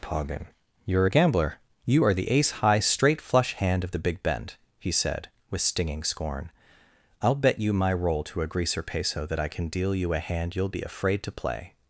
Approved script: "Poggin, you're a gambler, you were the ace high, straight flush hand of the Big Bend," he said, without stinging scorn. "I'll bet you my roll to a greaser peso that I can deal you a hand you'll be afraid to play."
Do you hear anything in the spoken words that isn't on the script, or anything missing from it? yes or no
yes